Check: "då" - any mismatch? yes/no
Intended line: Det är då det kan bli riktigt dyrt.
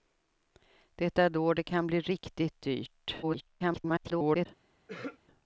no